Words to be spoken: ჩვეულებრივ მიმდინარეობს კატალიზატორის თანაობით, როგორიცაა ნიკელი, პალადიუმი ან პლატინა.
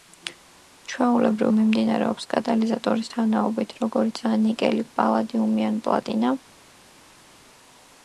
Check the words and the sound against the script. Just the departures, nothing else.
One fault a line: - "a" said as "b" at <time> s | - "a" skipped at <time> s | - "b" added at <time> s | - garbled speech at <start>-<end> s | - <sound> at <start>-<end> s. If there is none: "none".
none